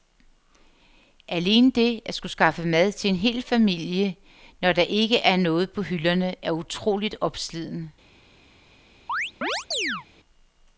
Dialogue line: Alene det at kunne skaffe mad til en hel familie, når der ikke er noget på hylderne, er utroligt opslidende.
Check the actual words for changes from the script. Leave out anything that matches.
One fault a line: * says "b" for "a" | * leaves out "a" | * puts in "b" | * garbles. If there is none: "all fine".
* says "skulle" for "kunne"